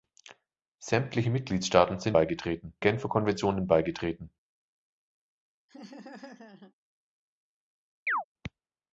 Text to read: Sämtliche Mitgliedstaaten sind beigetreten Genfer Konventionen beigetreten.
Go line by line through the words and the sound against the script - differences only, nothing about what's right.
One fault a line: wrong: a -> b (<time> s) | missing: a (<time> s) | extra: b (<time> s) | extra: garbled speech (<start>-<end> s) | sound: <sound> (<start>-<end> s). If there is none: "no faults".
sound: laugh (5.7-6.7 s)
sound: chirp (8.1-8.2 s)